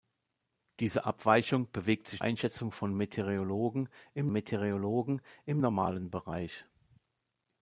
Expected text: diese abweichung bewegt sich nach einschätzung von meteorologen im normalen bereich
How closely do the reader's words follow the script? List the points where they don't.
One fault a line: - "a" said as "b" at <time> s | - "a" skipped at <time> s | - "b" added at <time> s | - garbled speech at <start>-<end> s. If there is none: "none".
- "nach" skipped at 2.2 s
- "meteorologen im" added at 4.3 s